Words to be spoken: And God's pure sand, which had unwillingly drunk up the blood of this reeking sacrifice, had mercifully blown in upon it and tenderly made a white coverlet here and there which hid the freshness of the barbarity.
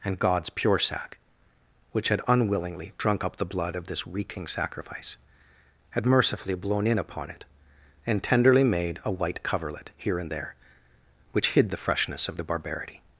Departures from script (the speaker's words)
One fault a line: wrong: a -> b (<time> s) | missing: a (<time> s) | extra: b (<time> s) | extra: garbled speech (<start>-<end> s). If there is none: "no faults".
wrong: sand -> sack (0.8 s)